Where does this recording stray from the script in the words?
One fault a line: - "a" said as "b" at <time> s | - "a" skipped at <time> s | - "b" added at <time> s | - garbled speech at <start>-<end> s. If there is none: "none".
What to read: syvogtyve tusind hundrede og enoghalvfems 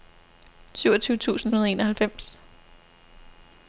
none